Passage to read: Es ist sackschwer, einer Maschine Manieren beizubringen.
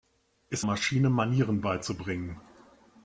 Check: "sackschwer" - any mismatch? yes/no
yes